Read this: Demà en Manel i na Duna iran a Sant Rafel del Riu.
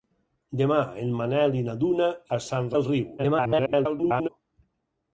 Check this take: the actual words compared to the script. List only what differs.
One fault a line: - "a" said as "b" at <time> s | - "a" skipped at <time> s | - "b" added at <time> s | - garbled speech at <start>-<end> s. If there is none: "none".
- "iran" skipped at 2.1 s
- "Rafel" skipped at 2.7 s
- garbled speech at 3.2-4.3 s